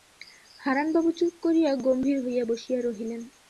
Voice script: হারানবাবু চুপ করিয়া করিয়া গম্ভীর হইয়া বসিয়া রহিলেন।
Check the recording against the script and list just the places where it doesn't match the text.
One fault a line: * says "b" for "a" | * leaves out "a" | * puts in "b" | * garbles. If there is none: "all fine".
* leaves out "করিয়া"